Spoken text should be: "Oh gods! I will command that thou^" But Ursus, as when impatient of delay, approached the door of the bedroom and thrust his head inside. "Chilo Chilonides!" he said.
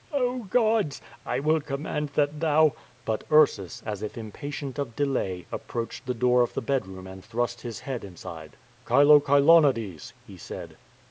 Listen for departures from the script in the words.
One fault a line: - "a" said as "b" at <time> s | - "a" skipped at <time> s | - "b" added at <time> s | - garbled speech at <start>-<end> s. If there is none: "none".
- "when" said as "if" at 4.0 s